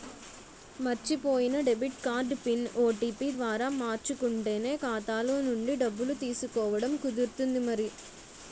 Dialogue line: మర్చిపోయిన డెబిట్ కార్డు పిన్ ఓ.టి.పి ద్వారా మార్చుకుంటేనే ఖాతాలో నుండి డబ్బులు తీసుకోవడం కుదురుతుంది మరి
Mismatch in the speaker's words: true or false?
false